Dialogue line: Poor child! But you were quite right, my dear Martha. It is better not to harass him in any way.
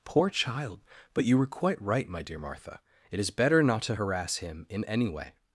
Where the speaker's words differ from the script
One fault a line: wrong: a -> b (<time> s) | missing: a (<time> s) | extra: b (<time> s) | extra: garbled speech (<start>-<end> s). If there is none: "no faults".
no faults